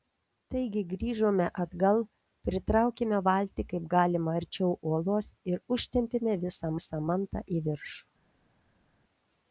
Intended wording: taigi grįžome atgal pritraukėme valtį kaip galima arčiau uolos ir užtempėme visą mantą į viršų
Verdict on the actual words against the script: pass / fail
fail